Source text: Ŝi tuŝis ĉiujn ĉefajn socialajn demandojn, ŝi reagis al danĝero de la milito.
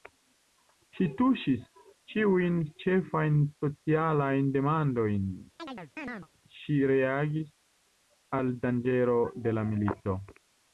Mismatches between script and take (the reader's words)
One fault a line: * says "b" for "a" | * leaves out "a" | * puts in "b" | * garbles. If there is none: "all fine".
all fine